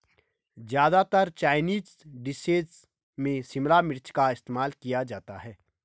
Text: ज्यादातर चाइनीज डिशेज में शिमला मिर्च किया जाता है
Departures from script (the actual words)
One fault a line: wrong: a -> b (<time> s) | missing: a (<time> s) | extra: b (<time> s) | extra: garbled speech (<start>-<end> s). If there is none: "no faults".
extra: का इस्तेमाल (4.1 s)